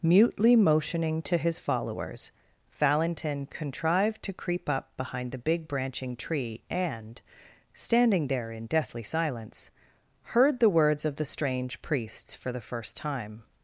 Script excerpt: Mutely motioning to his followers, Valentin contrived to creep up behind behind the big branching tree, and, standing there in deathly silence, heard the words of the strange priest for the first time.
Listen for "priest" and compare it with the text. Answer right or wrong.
wrong